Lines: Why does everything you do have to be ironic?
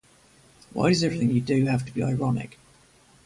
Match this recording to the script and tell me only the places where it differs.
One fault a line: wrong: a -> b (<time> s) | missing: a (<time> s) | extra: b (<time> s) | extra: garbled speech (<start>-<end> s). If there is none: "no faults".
no faults